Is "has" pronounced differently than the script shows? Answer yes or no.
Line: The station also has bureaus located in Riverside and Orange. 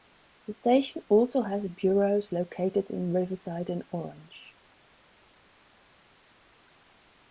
no